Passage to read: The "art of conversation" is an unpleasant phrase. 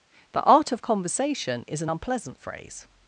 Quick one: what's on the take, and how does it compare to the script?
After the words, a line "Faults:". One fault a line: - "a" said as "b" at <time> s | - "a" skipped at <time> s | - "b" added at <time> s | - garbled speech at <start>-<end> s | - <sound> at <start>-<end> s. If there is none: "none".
The "art of conversation" is an unpleasant phrase.
Faults:
none